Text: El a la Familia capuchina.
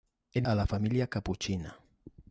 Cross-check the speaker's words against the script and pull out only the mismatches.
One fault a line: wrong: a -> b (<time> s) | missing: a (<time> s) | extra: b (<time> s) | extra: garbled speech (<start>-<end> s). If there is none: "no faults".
no faults